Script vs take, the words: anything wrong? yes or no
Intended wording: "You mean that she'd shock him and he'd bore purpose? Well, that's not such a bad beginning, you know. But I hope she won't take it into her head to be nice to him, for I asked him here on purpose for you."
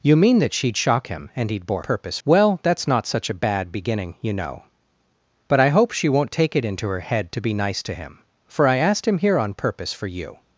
no